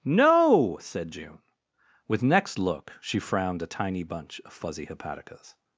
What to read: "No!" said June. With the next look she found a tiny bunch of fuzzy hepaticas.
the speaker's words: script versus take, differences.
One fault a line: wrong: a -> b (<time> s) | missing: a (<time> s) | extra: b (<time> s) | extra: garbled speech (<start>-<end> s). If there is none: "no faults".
missing: the (2.2 s)
wrong: found -> frowned (3.2 s)